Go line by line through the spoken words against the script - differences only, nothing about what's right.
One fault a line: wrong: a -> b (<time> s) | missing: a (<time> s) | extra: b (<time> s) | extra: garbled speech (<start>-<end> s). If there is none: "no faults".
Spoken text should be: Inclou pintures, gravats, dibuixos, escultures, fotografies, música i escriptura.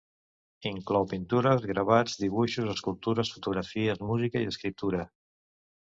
no faults